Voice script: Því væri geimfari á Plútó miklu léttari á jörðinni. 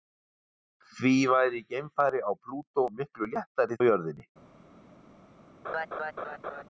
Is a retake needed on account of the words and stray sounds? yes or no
yes